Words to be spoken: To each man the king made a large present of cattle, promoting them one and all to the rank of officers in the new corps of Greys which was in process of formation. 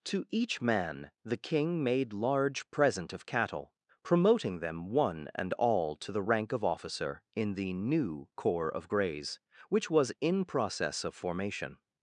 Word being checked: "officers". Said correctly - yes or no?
no